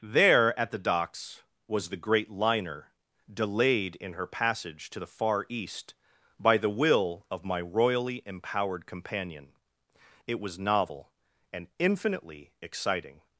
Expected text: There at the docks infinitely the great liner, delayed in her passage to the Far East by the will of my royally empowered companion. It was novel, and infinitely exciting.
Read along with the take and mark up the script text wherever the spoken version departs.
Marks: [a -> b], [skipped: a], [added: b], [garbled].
There at the docks [infinitely -> was] the great liner, delayed in her passage to the Far East by the will of my royally empowered companion. It was novel, and infinitely exciting.